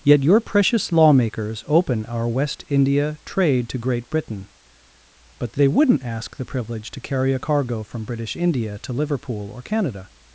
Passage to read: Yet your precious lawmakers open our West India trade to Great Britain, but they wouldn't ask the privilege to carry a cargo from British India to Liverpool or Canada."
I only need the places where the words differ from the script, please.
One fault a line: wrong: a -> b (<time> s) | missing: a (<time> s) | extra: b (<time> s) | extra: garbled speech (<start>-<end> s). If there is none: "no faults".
no faults